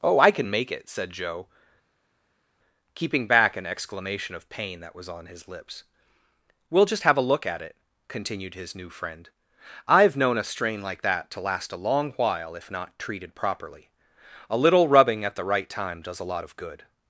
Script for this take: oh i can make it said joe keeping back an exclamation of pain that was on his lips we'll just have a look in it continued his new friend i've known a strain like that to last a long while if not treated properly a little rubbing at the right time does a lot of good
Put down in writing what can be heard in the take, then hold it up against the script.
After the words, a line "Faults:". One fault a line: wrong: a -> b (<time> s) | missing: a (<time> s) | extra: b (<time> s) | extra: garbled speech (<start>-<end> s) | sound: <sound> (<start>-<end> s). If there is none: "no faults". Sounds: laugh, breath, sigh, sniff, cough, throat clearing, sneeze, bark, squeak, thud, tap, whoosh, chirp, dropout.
oh i can make it said joe keeping back an exclamation of pain that was on his lips we'll just have a look at it continued his new friend i've known a strain like that to last a long while if not treated properly a little rubbing at the right time does a lot of good
Faults:
wrong: in -> at (7.4 s)